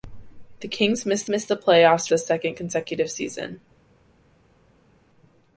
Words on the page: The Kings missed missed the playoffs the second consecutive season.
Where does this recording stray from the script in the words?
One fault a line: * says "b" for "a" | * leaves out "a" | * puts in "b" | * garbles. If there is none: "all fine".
all fine